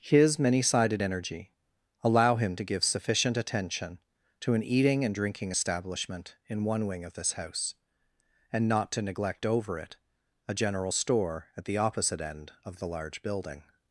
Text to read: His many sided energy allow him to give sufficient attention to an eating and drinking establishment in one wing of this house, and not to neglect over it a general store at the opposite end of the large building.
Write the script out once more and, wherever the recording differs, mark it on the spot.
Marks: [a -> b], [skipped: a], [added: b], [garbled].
His many sided energy allow him to give sufficient attention to an eating and drinking establishment in one wing of this house, and not to neglect over it a general store at the opposite end of the large building.